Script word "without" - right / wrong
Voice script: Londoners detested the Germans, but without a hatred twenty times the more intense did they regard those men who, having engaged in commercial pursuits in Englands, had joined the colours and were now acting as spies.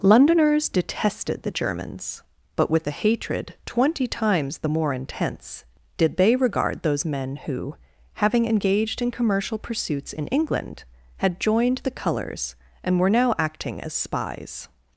wrong